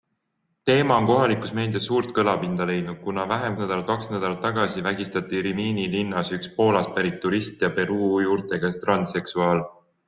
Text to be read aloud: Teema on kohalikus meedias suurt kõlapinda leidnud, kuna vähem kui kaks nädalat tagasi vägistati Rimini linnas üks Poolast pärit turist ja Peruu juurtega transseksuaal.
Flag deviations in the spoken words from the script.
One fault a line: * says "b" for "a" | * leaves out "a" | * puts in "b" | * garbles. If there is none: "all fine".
* says "nädalat" for "kui"